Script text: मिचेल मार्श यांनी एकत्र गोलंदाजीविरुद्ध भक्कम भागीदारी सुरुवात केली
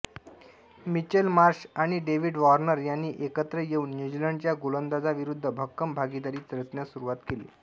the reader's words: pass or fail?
fail